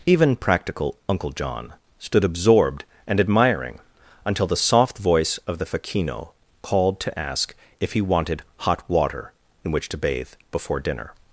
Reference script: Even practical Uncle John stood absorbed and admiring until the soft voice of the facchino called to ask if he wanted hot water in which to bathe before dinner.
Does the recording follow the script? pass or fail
pass